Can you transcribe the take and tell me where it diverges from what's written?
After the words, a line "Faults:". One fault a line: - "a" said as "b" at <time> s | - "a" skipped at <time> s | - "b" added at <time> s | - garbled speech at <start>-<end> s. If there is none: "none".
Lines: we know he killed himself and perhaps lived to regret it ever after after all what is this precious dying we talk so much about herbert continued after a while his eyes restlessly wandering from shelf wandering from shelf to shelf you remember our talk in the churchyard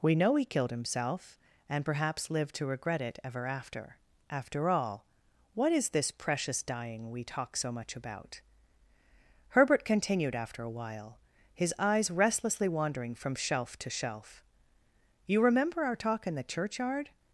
we know he killed himself and perhaps lived to regret it ever after after all what is this precious dying we talk so much about herbert continued after a while his eyes restlessly wandering from shelf to shelf you remember our talk in the churchyard
Faults:
- "wandering from shelf" skipped at 13.8 s